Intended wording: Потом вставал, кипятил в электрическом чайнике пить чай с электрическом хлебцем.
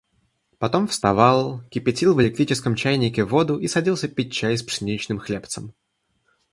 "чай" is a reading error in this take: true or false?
false